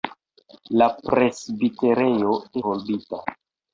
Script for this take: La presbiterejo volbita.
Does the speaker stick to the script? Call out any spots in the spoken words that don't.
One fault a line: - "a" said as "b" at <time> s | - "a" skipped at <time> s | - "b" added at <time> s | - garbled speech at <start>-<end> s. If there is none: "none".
none